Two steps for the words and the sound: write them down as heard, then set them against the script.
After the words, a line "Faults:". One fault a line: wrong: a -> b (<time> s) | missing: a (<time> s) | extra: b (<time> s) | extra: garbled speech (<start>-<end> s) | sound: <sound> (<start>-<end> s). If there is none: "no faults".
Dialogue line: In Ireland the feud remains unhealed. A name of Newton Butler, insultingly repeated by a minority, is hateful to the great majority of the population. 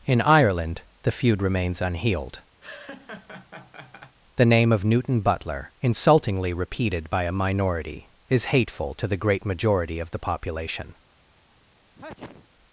In Ireland the feud remains unhealed. The name of Newton Butler, insultingly repeated by a minority, is hateful to the great majority of the population.
Faults:
sound: laugh (2.6-4.2 s)
wrong: A -> The (4.3 s)
sound: sneeze (12.0-12.5 s)